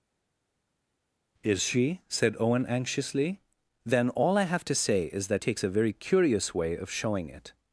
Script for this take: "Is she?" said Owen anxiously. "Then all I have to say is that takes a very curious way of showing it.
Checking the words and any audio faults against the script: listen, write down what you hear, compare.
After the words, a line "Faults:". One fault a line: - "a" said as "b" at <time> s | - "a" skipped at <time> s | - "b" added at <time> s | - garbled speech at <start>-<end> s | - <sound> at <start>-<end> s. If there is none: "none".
"Is she?" said Owen anxiously. "Then all I have to say is that takes a very curious way of showing it.
Faults:
none